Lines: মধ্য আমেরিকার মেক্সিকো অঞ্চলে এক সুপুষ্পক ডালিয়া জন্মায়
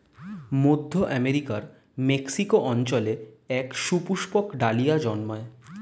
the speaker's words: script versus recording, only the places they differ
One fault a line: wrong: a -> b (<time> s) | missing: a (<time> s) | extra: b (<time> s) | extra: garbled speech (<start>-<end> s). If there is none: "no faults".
no faults